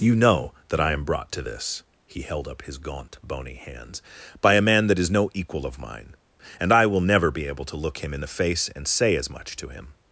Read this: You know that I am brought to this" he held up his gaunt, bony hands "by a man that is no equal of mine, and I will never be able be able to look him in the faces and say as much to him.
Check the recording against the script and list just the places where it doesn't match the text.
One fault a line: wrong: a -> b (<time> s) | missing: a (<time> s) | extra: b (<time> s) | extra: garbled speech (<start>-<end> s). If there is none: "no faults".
missing: be able (7.7 s)
wrong: faces -> face (8.4 s)